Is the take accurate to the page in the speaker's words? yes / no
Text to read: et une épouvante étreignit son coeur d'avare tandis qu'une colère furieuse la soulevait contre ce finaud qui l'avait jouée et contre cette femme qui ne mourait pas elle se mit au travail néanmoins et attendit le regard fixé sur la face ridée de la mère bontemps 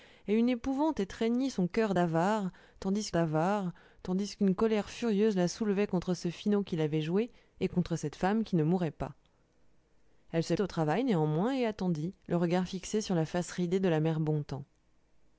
no